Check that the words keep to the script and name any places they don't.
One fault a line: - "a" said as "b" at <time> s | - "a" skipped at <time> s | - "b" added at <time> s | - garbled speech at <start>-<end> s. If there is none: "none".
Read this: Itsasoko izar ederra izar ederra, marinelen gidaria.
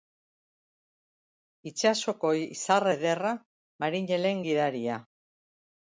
- "izar ederra" skipped at 3.3 s